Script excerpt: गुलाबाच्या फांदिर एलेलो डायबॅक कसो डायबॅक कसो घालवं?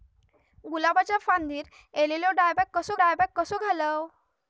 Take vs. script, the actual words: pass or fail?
pass